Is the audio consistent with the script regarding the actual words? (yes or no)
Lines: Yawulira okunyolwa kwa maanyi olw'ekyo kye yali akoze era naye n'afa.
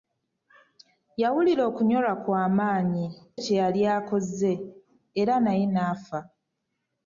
no